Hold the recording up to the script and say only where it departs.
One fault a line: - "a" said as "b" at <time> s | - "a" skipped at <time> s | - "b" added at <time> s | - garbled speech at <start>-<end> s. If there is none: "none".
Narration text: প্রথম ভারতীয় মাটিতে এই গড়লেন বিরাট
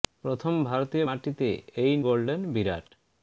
none